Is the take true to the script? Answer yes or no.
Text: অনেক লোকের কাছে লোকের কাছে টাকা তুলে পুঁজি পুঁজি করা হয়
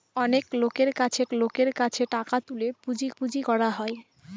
yes